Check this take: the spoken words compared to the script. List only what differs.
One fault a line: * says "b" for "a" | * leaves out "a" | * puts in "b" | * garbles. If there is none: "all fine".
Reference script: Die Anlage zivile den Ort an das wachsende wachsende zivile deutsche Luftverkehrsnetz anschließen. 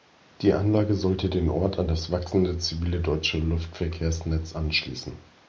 * says "sollte" for "zivile"
* leaves out "wachsende"